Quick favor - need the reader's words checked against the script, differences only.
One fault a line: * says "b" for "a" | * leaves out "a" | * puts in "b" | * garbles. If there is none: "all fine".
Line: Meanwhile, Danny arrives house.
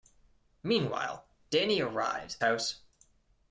all fine